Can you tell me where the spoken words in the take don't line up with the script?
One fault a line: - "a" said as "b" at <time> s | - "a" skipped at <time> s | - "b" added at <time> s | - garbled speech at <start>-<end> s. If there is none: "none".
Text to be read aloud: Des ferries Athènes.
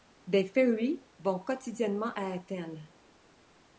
- "vont quotidiennement à" added at 1.2 s